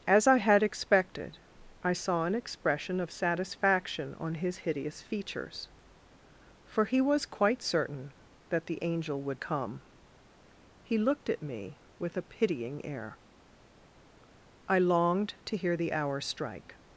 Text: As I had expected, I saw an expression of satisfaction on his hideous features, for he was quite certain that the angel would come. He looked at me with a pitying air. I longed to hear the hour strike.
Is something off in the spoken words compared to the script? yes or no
no